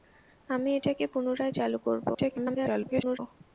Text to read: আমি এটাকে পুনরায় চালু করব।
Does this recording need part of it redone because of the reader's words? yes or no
yes